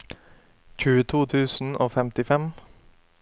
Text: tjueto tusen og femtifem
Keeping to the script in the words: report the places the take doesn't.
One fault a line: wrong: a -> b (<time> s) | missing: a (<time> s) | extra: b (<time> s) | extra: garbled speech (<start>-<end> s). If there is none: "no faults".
no faults